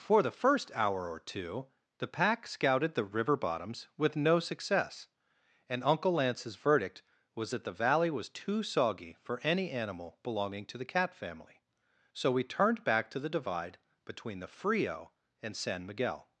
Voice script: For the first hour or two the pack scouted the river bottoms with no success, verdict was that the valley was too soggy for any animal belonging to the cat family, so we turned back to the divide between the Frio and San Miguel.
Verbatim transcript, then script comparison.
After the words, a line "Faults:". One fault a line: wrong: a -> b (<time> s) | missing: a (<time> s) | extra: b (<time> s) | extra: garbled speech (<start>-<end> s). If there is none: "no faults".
For the first hour or two the pack scouted the river bottoms with no success, and Uncle Lance's verdict was that the valley was too soggy for any animal belonging to the cat family, so we turned back to the divide between the Frio and San Miguel.
Faults:
extra: and Uncle Lance's (5.7 s)